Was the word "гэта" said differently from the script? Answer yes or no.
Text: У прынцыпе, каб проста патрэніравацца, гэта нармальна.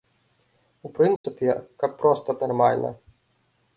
yes